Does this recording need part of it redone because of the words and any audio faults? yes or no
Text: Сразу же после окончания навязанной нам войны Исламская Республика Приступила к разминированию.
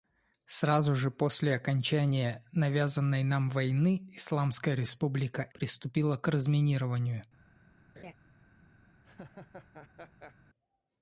yes